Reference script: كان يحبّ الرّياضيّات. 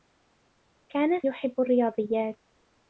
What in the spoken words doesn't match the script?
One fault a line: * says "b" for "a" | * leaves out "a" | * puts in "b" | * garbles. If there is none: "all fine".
all fine